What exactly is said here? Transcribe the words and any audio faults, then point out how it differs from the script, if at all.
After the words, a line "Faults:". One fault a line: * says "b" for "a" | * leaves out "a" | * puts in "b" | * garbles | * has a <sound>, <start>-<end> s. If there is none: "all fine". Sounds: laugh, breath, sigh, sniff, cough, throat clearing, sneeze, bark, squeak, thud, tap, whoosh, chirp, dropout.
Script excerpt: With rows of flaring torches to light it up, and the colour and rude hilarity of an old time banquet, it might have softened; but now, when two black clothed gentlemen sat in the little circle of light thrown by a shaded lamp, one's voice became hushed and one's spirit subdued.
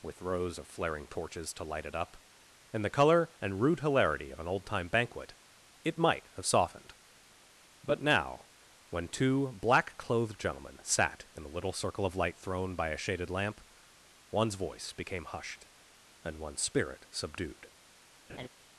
With rows of flaring torches to light it up, and the colour and rude hilarity of an old time banquet, it might have softened; but now, when two black clothed gentlemen sat in the little circle of light thrown by a shaded lamp, one's voice became hushed and one's spirit subdued.
Faults:
* has a laugh, 18.3-18.5 s